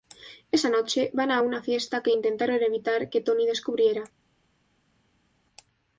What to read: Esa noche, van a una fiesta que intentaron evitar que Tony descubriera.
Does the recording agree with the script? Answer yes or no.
yes